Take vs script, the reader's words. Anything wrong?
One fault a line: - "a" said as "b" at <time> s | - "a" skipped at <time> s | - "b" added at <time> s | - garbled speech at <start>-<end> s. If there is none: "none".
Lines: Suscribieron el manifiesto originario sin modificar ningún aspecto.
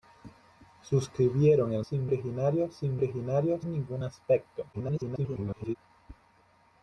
- "manifiesto" said as "sin" at 1.8 s
- "modificar" said as "originario" at 3.0 s
- garbled speech at 4.7-5.8 s